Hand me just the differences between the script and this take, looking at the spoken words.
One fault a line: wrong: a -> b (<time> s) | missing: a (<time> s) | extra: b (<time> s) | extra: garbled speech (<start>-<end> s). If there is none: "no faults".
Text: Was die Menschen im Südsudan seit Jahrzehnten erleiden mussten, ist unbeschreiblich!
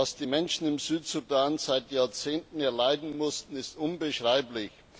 no faults